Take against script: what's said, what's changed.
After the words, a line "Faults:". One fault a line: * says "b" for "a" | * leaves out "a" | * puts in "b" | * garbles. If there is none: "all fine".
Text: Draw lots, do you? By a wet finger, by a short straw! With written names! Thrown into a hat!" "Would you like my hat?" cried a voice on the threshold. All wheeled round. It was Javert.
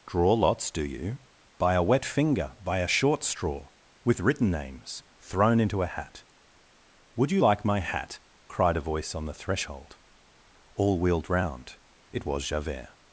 Draw lots, do you? By a wet finger, by a short straw! With written names! Thrown into a hat!" "Would you like my hat?" cried a voice on the threshold. All wheeled round. It was Javert.
Faults:
all fine